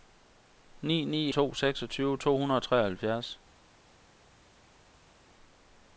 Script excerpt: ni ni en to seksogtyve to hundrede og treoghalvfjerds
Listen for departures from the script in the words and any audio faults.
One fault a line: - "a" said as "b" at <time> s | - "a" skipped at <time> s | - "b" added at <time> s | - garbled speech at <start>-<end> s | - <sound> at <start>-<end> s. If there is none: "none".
- "en" skipped at 1.3 s